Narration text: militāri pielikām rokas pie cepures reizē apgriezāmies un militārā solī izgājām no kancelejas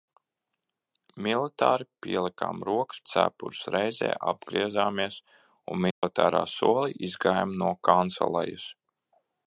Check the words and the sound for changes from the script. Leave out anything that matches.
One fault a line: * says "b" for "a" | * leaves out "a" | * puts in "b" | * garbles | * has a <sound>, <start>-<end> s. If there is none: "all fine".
* leaves out "pie"
* has a dropout, 5.9-6.0 s